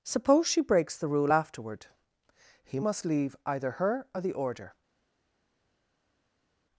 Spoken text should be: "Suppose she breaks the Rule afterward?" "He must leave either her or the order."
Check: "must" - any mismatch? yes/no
no